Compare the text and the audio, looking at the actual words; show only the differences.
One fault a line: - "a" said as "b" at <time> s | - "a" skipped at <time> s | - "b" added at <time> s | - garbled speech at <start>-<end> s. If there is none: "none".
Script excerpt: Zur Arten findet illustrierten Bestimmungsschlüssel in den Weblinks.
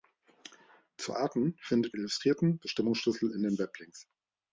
none